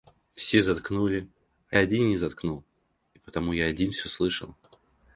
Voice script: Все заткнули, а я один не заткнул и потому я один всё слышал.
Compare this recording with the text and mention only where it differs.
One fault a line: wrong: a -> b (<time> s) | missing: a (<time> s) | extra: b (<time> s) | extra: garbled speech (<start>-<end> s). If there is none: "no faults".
missing: я (1.8 s)